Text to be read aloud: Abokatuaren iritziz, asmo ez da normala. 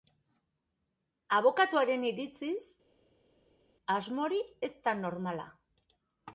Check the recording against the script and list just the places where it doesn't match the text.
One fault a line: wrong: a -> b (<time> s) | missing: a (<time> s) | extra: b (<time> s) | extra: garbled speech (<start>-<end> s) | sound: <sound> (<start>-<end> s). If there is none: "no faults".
extra: hori (4.2 s)